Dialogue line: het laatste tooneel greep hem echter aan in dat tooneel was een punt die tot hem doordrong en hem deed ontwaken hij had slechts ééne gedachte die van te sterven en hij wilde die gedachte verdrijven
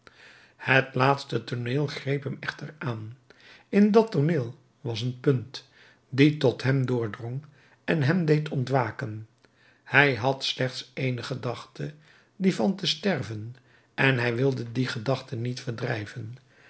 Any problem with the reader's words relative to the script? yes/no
yes